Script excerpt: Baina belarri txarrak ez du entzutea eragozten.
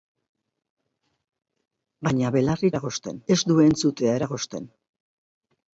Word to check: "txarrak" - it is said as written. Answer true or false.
false